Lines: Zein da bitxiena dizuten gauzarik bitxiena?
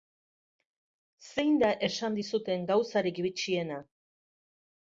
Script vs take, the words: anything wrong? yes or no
yes